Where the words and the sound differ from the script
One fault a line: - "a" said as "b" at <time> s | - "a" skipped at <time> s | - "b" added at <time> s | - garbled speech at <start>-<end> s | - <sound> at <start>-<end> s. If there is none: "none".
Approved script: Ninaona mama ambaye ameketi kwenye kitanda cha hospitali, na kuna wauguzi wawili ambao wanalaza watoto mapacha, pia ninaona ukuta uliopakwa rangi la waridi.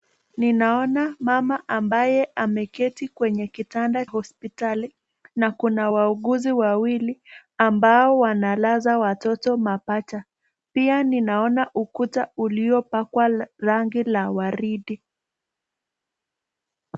- "cha" skipped at 4.0 s